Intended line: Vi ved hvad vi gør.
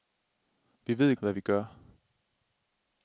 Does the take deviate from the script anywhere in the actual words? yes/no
no